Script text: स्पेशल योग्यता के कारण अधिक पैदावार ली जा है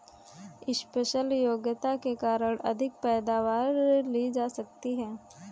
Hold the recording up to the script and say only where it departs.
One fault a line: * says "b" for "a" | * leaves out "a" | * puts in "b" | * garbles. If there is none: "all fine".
* puts in "सकती"